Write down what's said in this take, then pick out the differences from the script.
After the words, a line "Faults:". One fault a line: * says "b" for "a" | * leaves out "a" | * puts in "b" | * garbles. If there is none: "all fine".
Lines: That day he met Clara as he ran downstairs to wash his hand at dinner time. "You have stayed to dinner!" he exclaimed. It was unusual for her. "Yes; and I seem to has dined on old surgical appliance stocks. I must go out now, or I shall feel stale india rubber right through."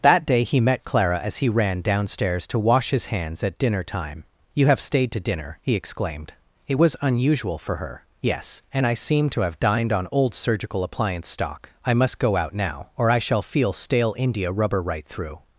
That day he met Clara as he ran downstairs to wash his hands at dinner time. "You have stayed to dinner!" he exclaimed. It was unusual for her. "Yes; and I seem to have dined on old surgical appliance stock. I must go out now, or I shall feel stale india rubber right through."
Faults:
* says "hands" for "hand"
* says "have" for "has"
* says "stock" for "stocks"